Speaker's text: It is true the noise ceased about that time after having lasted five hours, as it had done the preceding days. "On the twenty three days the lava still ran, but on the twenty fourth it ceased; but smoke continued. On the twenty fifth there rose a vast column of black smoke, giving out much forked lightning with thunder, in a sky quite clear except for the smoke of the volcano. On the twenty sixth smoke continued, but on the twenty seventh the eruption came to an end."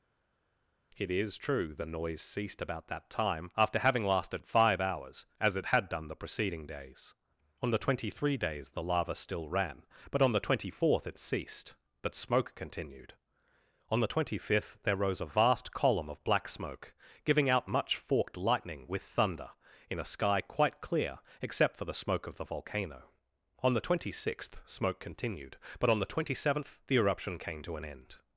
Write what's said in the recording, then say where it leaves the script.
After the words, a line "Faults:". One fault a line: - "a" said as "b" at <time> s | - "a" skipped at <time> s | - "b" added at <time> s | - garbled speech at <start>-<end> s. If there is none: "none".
It is true the noise ceased about that time after having lasted five hours, as it had done the preceding days. "On the twenty three days the lava still ran, but on the twenty fourth it ceased; but smoke continued. On the twenty fifth there rose a vast column of black smoke, giving out much forked lightning with thunder, in a sky quite clear except for the smoke of the volcano. On the twenty sixth smoke continued, but on the twenty seventh the eruption came to an end."
Faults:
none